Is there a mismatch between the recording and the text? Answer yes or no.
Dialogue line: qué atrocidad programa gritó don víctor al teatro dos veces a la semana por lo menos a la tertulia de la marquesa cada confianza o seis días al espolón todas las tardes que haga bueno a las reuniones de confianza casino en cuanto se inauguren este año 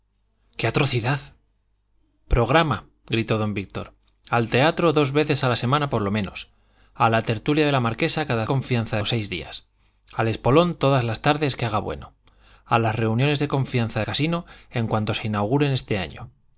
no